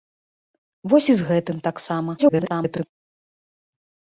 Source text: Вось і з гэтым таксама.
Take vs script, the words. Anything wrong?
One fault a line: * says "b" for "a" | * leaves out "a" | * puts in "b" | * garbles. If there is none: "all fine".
* garbles